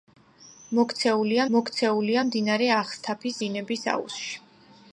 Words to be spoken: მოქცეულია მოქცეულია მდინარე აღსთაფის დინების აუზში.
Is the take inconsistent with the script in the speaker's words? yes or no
no